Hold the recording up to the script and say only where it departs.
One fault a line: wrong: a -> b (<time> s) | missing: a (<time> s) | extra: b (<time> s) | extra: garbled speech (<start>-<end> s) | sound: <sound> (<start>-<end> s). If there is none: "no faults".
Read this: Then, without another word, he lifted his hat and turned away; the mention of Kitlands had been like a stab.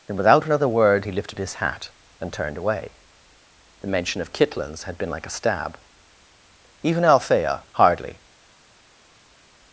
extra: Even Althea hardly (6.8 s)